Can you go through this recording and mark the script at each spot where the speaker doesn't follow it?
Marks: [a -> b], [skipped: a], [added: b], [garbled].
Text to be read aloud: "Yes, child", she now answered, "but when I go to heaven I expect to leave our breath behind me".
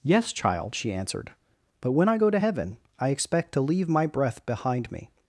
"Yes, child", she [skipped: now] answered, "but when I go to heaven I expect to leave [our -> my] breath behind me".